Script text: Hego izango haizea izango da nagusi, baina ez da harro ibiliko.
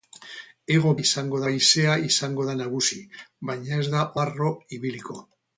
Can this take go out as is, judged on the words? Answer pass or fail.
pass